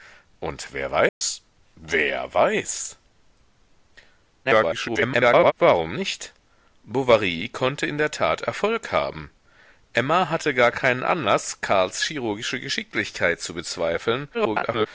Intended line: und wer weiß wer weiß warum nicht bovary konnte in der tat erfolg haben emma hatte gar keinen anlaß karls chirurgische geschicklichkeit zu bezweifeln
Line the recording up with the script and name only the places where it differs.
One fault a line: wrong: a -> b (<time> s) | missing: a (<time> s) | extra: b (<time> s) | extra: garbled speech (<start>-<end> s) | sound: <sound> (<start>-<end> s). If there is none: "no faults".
sound: dropout (1.1-1.2 s)
extra: garbled speech (4.4-5.5 s)
extra: garbled speech (14.3-14.9 s)